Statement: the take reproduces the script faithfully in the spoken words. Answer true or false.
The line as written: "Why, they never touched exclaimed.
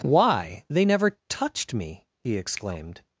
false